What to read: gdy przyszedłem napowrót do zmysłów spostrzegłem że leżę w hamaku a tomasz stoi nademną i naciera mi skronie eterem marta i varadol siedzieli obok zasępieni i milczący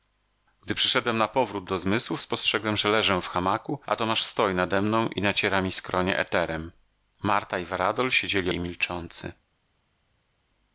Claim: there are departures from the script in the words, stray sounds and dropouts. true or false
true